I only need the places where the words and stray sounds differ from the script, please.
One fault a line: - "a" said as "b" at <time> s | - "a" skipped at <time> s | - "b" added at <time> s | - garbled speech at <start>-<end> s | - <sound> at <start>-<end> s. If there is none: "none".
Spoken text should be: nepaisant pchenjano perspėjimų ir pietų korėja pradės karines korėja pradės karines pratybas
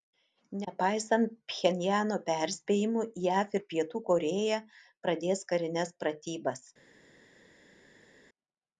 - "jav" added at 3.3 s
- "korėja pradės karines" skipped at 6.0 s